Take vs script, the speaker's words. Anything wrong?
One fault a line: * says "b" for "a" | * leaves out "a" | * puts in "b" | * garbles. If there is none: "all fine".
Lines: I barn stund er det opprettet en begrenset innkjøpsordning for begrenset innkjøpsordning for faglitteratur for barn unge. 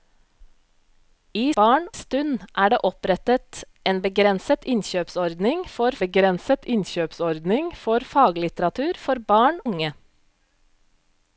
all fine